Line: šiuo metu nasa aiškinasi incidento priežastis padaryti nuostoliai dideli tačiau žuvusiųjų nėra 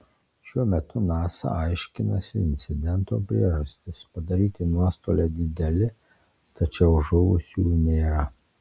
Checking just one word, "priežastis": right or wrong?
right